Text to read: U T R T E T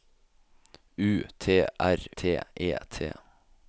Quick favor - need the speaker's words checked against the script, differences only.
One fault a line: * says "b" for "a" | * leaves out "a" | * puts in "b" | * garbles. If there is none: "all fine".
all fine